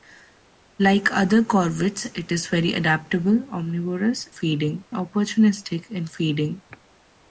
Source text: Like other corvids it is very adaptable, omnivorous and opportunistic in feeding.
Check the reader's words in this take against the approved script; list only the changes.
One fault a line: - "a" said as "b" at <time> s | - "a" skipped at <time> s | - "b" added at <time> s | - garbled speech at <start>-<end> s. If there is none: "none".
- "and" said as "feeding" at 4.3 s